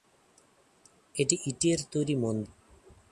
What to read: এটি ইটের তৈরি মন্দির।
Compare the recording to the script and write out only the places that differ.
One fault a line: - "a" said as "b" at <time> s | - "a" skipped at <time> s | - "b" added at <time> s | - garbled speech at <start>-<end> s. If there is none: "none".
none